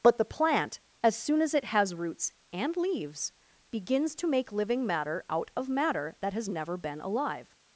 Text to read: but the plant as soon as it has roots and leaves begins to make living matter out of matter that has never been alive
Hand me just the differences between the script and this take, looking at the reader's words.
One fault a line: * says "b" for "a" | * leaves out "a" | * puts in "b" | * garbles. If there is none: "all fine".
all fine